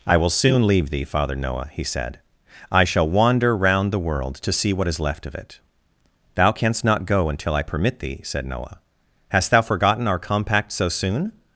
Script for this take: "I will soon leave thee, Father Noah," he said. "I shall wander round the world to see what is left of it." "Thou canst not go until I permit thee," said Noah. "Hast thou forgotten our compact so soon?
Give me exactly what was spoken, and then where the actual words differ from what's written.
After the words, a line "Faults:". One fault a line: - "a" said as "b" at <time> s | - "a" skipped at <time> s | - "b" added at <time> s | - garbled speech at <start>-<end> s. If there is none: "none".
"I will soon leave thee, Father Noah," he said. "I shall wander round the world to see what is left of it." "Thou canst not go until I permit thee," said Noah. "Hast thou forgotten our compact so soon?
Faults:
none